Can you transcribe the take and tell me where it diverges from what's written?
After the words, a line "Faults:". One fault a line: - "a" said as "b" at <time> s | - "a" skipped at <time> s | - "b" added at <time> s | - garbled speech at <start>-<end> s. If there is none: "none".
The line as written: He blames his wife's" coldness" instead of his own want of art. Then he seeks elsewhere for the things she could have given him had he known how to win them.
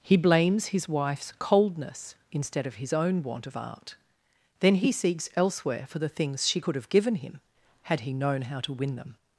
He blames his wife's" coldness" instead of his own want of art. Then he seeks elsewhere for the things she could have given him had he known how to win them.
Faults:
none